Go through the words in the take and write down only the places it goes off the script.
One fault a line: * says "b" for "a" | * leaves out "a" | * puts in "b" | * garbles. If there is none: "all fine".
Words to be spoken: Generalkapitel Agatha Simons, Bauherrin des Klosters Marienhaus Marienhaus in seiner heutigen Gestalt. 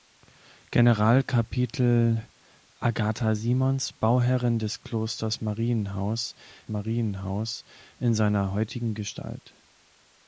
all fine